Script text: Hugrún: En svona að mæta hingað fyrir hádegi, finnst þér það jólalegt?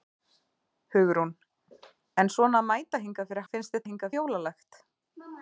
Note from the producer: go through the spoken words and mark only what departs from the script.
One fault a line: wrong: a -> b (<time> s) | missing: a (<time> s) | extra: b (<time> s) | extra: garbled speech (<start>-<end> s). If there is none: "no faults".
missing: hádegi (3.5 s)
wrong: það -> hingað (3.9 s)